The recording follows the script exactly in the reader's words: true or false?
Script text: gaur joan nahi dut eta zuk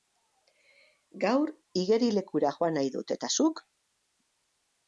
false